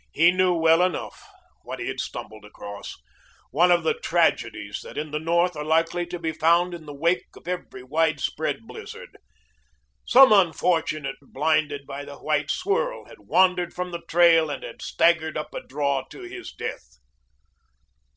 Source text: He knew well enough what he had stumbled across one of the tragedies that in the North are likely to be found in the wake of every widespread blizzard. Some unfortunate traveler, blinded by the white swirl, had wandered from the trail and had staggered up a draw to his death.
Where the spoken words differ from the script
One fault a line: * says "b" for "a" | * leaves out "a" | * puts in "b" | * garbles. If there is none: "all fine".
* leaves out "traveler"